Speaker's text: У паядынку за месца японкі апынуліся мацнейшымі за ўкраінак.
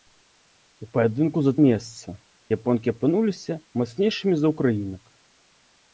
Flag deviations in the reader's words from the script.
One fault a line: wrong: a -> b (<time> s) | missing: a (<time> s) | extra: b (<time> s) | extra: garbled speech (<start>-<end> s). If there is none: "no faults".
no faults